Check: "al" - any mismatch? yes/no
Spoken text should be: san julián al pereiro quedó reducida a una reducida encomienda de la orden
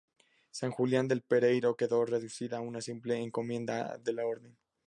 yes